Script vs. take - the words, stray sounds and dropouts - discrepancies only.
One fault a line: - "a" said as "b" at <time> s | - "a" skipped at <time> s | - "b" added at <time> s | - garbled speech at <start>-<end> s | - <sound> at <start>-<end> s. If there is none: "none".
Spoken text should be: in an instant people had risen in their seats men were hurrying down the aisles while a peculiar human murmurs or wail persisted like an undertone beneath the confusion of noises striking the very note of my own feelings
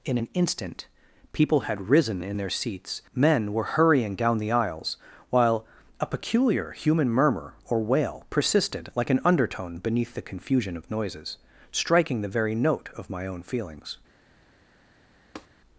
- "murmurs" said as "murmur" at 7.1 s
- tap at 15.4-15.5 s